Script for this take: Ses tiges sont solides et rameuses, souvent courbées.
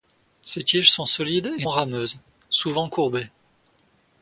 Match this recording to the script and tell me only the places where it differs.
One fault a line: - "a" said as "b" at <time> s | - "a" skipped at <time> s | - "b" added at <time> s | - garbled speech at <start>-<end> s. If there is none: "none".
none